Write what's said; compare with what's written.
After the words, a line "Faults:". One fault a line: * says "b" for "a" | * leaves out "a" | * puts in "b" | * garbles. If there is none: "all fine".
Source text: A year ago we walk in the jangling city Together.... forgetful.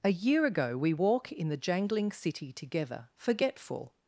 A year ago we walk in the jangling city Together.... forgetful.
Faults:
all fine